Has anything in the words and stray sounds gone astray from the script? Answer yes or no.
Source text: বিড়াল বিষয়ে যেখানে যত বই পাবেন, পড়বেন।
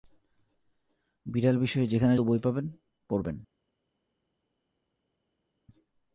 yes